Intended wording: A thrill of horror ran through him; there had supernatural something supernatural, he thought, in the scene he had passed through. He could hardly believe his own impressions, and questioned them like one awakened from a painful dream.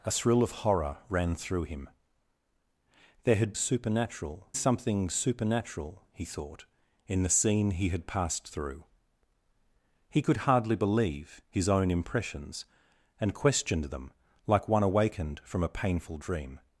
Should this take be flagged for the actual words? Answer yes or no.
no